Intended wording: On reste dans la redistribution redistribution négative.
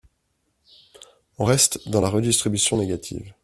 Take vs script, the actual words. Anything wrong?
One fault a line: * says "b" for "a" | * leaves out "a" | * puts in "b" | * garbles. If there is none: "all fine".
* leaves out "redistribution"